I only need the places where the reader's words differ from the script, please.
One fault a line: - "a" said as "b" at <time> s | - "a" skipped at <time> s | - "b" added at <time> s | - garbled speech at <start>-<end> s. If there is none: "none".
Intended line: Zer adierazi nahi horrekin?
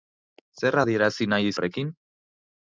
none